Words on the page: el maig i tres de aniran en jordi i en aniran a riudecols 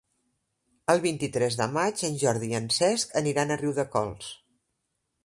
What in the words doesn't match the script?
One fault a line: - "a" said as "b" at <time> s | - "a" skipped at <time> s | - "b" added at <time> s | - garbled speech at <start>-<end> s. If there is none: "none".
- "maig" said as "vint" at 1.0 s
- "aniran" said as "maig" at 1.8 s
- "cesc" added at 2.8 s